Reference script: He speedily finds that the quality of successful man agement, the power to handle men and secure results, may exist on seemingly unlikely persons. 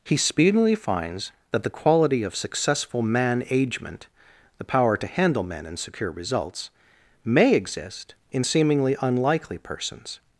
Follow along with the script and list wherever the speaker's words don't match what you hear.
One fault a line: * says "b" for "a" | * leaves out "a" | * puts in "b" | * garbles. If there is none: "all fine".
* says "in" for "on"